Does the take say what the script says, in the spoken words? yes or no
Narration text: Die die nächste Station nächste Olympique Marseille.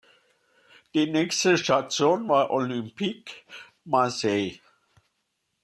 no